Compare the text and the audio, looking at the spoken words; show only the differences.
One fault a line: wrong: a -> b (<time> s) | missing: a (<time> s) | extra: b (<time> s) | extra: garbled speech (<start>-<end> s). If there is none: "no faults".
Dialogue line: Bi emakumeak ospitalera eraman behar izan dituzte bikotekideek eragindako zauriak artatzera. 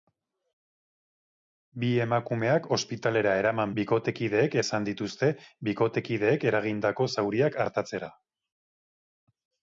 wrong: behar -> bikotekideek (3.8 s)